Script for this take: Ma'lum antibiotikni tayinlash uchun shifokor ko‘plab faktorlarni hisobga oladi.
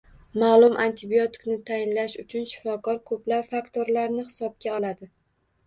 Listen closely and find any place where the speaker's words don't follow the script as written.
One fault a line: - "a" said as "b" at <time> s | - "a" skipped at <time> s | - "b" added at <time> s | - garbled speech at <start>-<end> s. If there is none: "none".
none